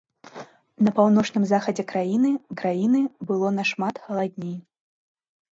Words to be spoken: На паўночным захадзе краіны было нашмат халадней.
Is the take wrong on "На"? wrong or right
right